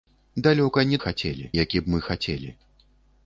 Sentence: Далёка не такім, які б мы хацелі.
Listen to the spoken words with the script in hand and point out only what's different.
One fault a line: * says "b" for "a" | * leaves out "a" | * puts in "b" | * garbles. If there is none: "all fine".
* says "хацелі" for "такім"